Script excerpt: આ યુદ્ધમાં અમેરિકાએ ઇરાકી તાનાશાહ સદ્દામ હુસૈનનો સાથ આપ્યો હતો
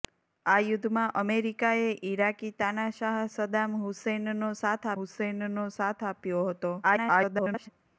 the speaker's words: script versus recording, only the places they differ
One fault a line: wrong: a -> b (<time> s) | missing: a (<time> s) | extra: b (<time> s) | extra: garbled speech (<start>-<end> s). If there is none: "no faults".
extra: હુસૈનનો સાથ (5.0 s)
extra: garbled speech (6.8-7.7 s)